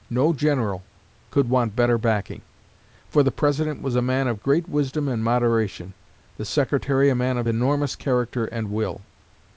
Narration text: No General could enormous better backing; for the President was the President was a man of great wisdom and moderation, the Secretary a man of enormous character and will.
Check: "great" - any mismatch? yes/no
no